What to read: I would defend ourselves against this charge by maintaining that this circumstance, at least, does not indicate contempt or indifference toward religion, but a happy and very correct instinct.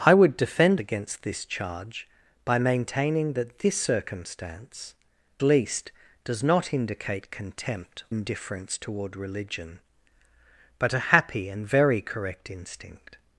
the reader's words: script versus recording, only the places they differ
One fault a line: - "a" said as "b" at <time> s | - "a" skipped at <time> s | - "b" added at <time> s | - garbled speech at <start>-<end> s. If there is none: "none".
- "ourselves" skipped at 0.8 s
- "at" skipped at 4.9 s
- "or" skipped at 8.0 s